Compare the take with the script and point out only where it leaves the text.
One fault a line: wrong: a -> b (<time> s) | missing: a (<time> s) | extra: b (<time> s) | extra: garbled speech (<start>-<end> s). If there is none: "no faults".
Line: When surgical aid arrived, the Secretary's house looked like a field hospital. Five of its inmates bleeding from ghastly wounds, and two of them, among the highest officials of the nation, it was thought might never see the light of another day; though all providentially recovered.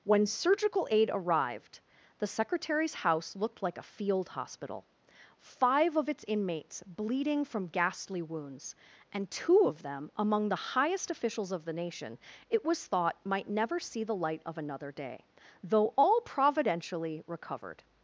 no faults